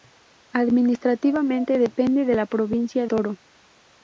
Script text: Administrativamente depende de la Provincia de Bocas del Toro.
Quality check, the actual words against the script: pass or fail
fail